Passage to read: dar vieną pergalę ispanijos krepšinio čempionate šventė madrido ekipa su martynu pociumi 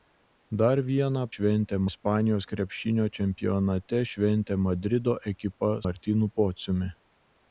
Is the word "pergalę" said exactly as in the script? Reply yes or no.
no